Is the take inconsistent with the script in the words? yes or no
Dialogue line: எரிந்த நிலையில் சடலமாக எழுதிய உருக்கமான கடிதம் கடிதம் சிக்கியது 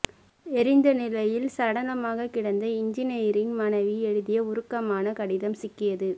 yes